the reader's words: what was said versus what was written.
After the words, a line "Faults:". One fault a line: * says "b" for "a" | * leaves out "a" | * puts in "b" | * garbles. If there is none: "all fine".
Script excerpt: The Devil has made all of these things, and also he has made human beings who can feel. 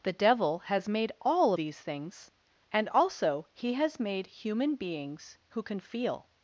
The Devil has made all these things, and also he has made human beings who can feel.
Faults:
* leaves out "of"